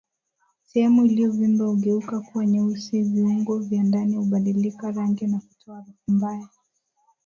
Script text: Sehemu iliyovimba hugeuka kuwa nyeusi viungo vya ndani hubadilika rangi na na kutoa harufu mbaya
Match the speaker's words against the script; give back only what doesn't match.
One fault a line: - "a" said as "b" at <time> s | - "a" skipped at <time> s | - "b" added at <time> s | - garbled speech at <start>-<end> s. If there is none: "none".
- "na" skipped at 5.4 s